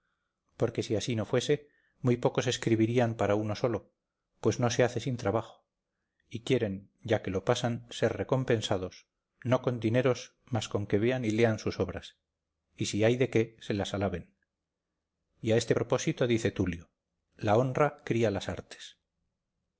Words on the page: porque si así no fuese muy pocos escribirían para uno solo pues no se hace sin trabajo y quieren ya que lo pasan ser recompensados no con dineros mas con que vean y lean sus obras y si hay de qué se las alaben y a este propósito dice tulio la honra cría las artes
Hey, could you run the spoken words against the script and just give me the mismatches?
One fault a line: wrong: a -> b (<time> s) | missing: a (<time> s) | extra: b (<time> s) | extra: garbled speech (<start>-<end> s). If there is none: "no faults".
no faults